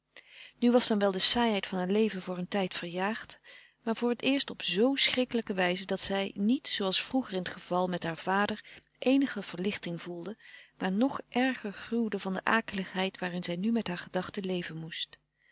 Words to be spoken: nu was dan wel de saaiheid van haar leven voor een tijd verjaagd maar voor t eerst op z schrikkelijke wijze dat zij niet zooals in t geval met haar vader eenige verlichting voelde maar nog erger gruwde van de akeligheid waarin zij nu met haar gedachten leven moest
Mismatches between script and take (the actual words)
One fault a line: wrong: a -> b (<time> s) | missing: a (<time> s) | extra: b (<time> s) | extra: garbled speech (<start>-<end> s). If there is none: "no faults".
extra: vroeger (7.0 s)